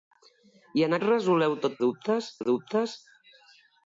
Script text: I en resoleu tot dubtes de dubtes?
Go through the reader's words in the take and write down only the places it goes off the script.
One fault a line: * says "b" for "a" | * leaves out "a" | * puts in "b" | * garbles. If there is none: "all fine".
all fine